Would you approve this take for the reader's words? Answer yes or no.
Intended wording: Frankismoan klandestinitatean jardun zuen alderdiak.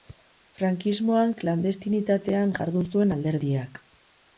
yes